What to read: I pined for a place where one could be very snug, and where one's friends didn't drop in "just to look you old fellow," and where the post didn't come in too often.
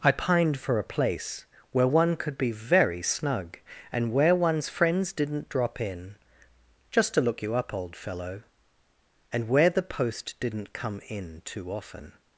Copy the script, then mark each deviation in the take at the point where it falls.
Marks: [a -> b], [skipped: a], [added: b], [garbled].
I pined for a place where one could be very snug, and where one's friends didn't drop in "just to look you [added: up] old fellow," and where the post didn't come in too often.